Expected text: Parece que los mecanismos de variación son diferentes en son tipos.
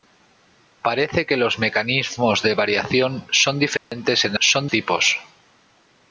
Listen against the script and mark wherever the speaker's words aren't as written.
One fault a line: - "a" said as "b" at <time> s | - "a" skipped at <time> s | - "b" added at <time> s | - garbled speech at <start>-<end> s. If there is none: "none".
none